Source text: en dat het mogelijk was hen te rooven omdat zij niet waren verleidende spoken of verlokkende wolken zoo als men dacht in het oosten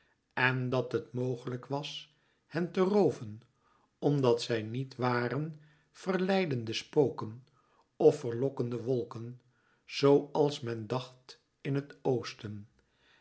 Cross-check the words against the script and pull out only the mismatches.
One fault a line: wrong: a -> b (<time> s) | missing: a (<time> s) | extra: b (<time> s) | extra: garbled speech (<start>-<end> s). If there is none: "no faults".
no faults